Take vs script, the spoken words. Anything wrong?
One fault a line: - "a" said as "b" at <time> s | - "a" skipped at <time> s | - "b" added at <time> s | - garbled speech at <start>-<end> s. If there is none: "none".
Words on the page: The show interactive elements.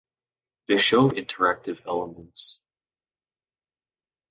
none